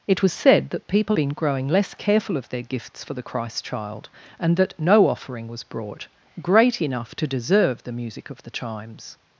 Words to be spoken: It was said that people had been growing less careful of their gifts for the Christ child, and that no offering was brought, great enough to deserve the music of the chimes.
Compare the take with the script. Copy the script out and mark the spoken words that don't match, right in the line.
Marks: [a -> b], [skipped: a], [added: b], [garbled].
It was said that people [skipped: had] been growing less careful of their gifts for the Christ child, and that no offering was brought, great enough to deserve the music of the chimes.